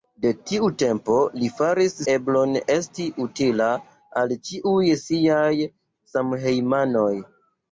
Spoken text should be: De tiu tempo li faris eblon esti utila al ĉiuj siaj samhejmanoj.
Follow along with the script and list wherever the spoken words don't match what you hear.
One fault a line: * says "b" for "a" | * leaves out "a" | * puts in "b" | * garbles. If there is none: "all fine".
all fine